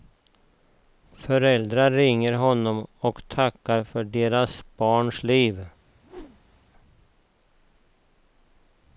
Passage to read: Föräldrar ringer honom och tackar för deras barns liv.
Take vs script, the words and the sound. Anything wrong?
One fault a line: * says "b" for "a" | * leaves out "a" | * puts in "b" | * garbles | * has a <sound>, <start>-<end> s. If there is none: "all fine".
* has a whoosh, 6.0-6.6 s